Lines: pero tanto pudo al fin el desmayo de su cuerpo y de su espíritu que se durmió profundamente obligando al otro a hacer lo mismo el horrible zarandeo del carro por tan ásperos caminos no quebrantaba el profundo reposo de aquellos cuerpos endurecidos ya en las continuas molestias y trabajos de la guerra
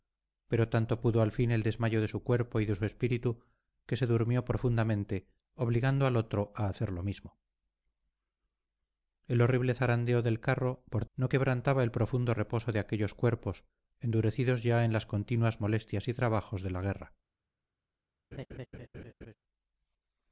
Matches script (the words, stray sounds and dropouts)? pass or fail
fail